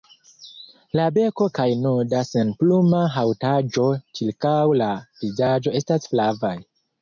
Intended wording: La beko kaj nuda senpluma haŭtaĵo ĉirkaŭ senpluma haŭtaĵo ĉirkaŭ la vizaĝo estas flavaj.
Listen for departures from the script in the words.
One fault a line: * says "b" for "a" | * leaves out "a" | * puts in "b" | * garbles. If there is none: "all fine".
* leaves out "senpluma haŭtaĵo ĉirkaŭ"